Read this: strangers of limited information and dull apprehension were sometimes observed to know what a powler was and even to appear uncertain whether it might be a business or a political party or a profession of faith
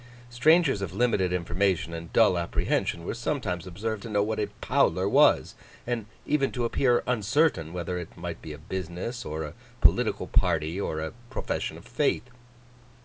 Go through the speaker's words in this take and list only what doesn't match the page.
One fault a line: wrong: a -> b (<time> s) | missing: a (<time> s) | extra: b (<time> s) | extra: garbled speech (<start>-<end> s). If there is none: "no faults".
no faults